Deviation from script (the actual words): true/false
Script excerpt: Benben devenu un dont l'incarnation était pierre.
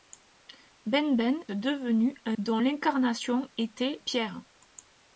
false